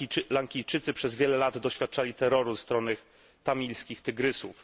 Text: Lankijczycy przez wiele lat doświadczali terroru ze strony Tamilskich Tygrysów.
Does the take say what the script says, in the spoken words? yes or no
no